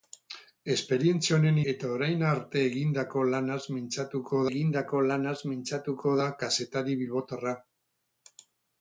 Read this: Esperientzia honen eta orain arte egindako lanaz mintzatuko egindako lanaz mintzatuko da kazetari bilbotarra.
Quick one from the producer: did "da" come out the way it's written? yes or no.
yes